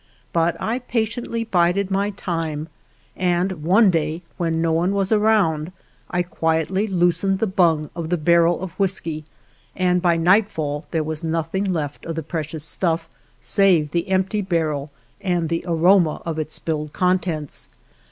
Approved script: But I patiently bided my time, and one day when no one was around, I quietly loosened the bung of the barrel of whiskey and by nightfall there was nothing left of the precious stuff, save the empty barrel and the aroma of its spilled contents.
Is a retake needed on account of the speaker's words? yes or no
no